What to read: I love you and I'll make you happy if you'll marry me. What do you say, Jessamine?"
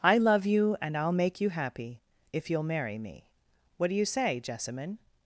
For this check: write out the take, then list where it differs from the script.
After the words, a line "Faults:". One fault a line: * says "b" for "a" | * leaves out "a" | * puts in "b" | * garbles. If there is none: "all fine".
I love you and I'll make you happy if you'll marry me. What do you say, Jessamine?"
Faults:
all fine